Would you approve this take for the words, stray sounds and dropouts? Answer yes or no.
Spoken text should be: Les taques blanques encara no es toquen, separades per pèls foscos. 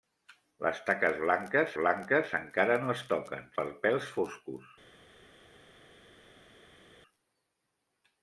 no